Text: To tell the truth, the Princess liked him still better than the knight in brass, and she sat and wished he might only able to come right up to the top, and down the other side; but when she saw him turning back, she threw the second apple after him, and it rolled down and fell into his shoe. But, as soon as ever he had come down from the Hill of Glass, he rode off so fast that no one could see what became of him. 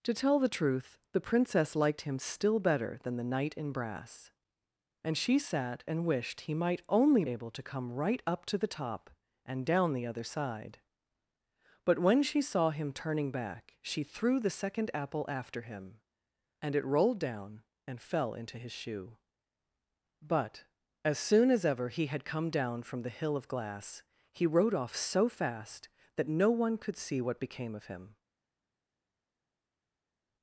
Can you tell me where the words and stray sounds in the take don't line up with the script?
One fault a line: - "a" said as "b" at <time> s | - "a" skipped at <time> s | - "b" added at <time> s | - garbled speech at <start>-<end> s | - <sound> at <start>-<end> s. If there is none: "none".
none